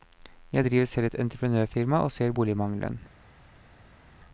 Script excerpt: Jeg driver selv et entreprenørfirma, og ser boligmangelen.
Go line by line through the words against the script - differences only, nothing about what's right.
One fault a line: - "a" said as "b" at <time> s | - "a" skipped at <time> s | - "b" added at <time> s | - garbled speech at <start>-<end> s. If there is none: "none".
none